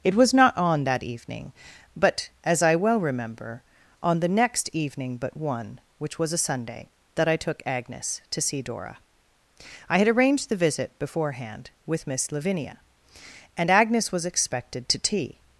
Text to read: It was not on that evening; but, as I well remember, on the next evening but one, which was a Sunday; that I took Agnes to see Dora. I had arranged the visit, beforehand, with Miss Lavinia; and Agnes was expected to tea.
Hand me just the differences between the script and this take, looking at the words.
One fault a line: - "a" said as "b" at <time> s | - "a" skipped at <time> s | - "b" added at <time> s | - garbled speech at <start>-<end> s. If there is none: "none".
none